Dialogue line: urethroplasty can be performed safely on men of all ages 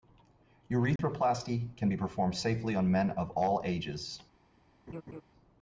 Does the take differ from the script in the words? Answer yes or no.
no